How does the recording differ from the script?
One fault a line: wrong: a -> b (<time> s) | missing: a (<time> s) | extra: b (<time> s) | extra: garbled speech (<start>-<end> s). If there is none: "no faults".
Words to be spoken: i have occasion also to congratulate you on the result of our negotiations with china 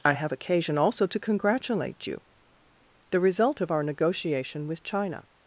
missing: on (2.2 s)
wrong: negotiations -> negotiation (3.8 s)